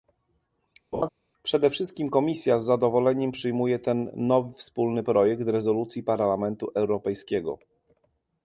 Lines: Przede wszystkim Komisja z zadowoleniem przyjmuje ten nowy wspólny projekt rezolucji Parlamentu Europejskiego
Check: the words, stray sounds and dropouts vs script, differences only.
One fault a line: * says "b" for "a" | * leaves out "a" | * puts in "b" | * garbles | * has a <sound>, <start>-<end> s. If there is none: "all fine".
* has a laugh, 0.9-1.1 s